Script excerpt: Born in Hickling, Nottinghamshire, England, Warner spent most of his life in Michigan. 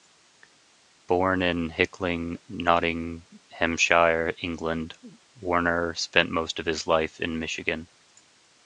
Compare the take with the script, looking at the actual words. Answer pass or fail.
pass